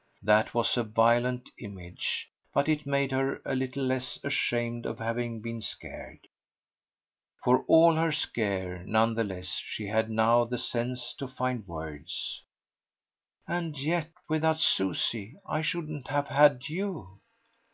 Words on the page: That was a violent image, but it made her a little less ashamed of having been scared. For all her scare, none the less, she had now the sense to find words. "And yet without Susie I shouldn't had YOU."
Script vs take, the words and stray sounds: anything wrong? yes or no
yes